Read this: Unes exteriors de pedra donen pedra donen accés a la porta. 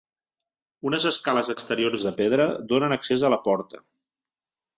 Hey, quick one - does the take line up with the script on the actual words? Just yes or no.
no